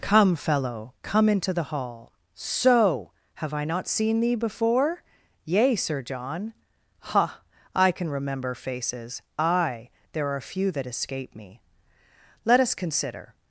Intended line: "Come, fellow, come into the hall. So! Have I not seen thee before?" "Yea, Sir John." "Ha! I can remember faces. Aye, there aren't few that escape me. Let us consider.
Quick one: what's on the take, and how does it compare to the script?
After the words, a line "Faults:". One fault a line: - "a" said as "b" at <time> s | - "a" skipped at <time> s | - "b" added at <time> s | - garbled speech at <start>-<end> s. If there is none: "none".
"Come, fellow, come into the hall. So! Have I not seen thee before?" "Yea, Sir John." "Ha! I can remember faces. Aye, there are few that escape me. Let us consider.
Faults:
- "aren't" said as "are" at 10.3 s